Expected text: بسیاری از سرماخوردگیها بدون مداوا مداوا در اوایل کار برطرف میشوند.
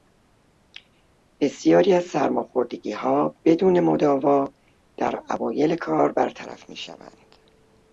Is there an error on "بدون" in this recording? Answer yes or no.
no